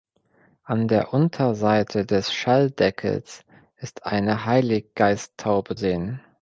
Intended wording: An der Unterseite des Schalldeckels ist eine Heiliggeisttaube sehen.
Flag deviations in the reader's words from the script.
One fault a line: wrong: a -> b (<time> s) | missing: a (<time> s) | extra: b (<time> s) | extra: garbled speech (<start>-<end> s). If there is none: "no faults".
no faults